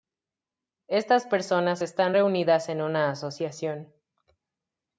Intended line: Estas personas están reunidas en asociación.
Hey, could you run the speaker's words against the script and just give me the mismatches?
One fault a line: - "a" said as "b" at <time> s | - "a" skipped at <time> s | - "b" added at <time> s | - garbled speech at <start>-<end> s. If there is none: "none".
- "una" added at 2.8 s